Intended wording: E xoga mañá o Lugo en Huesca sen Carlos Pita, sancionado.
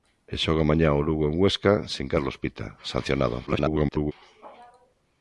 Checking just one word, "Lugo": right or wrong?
right